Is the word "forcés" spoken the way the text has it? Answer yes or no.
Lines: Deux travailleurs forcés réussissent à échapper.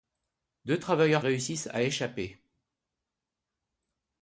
no